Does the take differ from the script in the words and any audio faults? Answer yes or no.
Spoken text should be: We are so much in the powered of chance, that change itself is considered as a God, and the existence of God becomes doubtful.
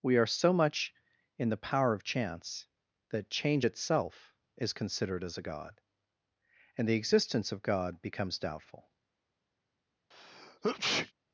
yes